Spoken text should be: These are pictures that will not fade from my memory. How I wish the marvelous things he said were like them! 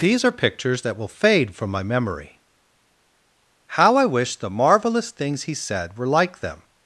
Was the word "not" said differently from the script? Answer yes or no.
yes